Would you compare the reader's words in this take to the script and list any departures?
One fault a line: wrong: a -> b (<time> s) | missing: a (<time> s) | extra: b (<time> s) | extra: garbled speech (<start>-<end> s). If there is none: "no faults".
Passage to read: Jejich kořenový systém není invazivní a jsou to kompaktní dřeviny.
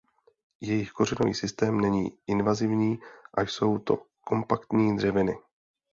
no faults